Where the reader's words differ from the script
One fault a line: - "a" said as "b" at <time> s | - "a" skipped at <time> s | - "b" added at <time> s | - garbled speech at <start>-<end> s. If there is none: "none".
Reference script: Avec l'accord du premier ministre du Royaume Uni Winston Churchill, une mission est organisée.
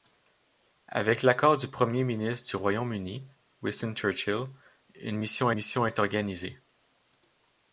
- "mission" added at 5.5 s